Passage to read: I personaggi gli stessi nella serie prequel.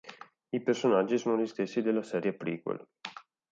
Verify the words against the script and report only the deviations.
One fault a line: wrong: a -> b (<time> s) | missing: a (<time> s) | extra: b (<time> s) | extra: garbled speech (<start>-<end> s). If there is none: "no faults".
extra: sono (1.2 s)
wrong: nella -> della (1.8 s)